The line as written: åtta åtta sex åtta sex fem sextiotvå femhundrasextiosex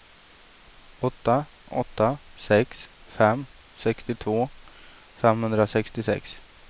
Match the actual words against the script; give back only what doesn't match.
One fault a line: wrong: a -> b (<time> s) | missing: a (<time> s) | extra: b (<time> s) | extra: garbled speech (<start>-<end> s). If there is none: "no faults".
missing: åtta sex (2.9 s)